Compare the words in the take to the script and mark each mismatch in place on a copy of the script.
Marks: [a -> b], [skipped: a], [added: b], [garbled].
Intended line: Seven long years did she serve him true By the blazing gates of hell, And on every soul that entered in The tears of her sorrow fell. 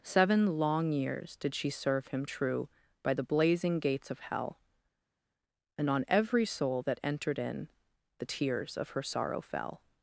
Seven long years did she serve him true By the blazing gates of hell, And on every soul that entered in The tears of her sorrow fell.